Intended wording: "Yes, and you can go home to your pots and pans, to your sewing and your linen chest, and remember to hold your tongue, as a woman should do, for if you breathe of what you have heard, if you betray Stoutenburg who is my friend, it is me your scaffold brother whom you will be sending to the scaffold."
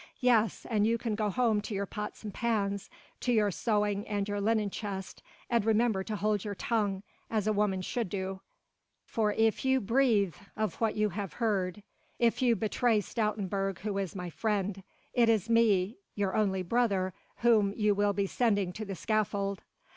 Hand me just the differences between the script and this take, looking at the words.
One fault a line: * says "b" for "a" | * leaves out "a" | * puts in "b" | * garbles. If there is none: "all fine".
* says "only" for "scaffold"